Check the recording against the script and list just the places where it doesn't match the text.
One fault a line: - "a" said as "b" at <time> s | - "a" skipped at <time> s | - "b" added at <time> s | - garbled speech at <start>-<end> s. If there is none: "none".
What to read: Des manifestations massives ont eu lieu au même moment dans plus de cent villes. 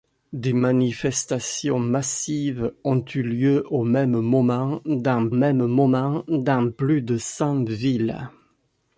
- "même moment dans" added at 5.3 s